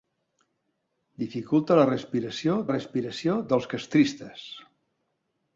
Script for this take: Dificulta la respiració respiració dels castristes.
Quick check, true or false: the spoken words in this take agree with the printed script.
true